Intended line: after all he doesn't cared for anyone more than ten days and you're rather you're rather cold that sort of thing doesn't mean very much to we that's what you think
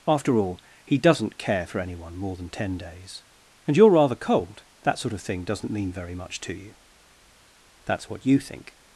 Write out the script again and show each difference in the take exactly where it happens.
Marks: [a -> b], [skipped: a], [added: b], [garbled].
after all he doesn't [cared -> care] for anyone more than ten days and you're rather [skipped: you're rather] cold that sort of thing doesn't mean very much to [we -> you] that's what you think